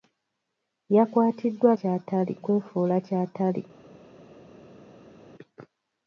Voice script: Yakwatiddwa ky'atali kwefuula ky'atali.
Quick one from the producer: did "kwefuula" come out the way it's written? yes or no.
yes